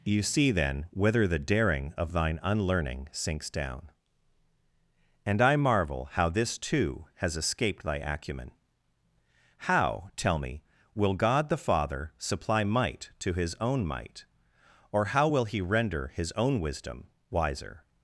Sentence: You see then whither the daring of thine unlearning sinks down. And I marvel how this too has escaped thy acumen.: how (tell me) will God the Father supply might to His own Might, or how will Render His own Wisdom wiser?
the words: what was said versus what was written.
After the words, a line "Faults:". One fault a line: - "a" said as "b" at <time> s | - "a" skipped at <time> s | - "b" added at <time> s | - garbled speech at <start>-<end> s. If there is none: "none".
You see then whither the daring of thine unlearning sinks down. And I marvel how this too has escaped thy acumen.: how (tell me) will God the Father supply might to His own Might, or how will He render His own Wisdom wiser?
Faults:
- "He" added at 15.4 s